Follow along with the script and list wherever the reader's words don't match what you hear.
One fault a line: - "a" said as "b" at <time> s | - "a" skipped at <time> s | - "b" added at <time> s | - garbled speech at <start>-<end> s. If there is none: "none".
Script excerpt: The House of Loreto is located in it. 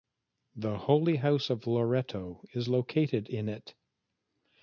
- "Holy" added at 0.8 s